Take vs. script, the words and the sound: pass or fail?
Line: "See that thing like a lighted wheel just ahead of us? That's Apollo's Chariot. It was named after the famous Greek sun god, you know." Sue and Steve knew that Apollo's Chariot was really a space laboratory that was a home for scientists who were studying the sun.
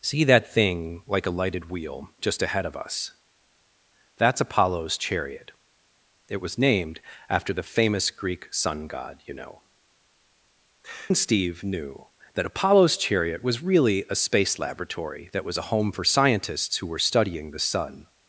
fail